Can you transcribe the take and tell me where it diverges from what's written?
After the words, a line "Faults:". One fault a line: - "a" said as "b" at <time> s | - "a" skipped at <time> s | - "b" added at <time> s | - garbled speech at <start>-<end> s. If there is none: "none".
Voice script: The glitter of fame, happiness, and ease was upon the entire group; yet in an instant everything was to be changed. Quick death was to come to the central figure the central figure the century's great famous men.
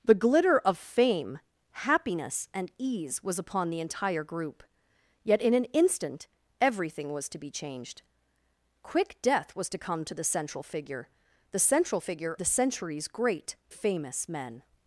The glitter of fame, happiness, and ease was upon the entire group; yet in an instant everything was to be changed. Quick death was to come to the central figure the central figure the century's great famous men.
Faults:
none